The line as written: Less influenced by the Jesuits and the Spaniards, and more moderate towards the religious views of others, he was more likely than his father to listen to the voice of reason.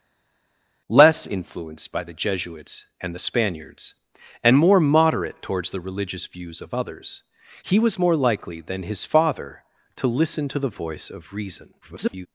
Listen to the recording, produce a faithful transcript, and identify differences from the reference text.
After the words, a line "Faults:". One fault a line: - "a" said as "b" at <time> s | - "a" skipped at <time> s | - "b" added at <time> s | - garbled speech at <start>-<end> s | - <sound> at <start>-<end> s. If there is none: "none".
Less influenced by the Jesuits and the Spaniards, and more moderate towards the religious views of others, he was more likely than his father to listen to the voice of reason. [garbled]
Faults:
- garbled speech at 11.8-12.3 s